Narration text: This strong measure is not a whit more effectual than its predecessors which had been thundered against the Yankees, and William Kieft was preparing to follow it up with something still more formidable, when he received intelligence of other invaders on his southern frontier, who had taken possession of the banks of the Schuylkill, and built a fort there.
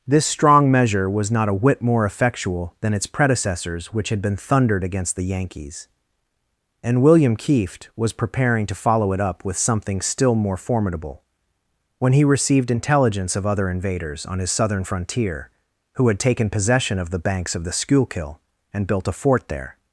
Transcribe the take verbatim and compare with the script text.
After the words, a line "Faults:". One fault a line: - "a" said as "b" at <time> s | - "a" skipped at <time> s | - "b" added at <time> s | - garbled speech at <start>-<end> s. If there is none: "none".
This strong measure was not a whit more effectual than its predecessors which had been thundered against the Yankees, and William Kieft was preparing to follow it up with something still more formidable, when he received intelligence of other invaders on his southern frontier, who had taken possession of the banks of the Schuylkill, and built a fort there.
Faults:
- "is" said as "was" at 1.1 s